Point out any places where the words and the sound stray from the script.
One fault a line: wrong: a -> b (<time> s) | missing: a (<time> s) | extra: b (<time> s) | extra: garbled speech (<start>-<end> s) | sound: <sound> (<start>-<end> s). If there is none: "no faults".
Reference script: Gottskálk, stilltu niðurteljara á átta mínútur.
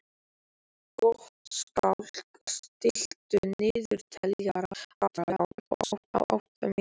extra: garbled speech (5.0-6.1 s)